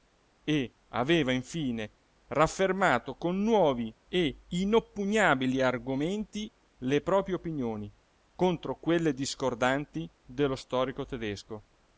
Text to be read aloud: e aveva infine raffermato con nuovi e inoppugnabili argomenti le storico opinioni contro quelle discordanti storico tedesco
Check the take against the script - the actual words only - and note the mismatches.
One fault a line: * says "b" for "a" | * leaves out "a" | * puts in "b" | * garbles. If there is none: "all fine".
* says "proprie" for "storico"
* puts in "dello"